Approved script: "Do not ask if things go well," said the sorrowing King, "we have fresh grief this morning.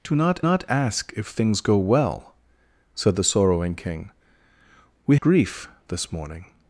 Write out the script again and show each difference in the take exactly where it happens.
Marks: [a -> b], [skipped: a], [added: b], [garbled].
"Do not [added: not] ask if things go well," said the sorrowing King, "we [skipped: have fresh] grief this morning.